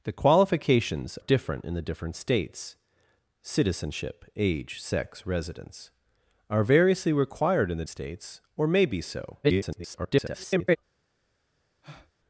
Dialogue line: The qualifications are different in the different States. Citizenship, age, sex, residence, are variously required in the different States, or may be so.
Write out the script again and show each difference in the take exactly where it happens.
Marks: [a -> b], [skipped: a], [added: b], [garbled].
The qualifications [skipped: are] different in the different States. Citizenship, age, sex, residence, are variously required in the [skipped: different] States, or may be so. [garbled]